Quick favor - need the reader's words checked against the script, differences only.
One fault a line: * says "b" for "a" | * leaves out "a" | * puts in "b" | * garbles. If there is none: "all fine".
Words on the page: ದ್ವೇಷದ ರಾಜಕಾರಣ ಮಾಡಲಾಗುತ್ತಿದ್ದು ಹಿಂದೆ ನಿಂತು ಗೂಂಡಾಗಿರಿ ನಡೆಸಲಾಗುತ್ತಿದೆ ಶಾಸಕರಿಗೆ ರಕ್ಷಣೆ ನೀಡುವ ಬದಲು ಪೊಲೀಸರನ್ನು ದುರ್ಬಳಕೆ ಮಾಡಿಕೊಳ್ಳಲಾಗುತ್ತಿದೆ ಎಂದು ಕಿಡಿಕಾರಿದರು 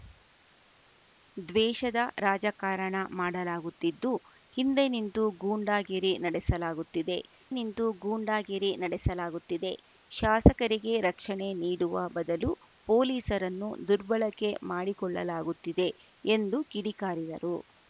* puts in "ನಿಂತು ಗೂಂಡಾಗಿರಿ ನಡೆಸಲಾಗುತ್ತಿದೆ"